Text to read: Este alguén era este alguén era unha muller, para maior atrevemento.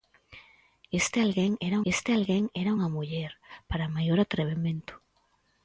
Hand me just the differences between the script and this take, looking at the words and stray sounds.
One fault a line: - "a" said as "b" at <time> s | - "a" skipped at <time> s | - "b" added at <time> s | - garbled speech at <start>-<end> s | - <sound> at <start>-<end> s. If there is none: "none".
none